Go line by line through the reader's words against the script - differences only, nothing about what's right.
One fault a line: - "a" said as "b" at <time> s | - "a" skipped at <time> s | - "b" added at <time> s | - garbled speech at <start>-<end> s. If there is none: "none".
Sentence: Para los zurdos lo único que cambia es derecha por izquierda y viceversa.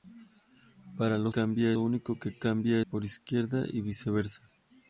- "zurdos" said as "cambia" at 1.3 s
- "es derecha" skipped at 2.8 s